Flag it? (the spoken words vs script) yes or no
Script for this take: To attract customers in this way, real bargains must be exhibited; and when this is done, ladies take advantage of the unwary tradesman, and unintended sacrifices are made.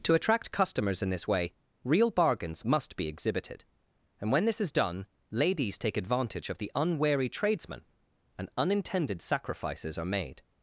no